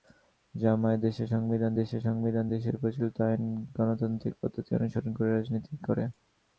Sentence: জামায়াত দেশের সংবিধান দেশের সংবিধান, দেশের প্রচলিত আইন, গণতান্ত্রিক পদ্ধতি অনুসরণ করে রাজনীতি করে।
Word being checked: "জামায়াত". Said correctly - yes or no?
yes